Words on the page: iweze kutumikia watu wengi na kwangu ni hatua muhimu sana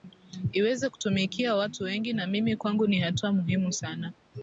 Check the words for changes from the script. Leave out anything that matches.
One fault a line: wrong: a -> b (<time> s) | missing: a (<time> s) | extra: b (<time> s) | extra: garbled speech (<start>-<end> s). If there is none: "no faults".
extra: mimi (2.3 s)